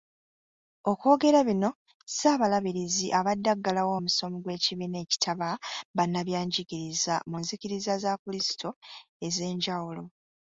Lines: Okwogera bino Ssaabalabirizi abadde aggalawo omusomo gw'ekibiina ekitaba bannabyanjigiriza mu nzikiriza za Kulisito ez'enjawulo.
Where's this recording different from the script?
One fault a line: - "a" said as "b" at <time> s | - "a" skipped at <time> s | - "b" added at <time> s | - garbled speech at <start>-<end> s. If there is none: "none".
none